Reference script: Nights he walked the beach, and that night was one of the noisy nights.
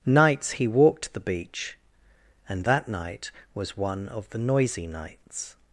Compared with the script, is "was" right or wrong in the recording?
right